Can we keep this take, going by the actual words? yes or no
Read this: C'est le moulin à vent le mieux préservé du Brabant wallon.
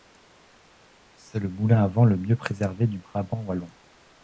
yes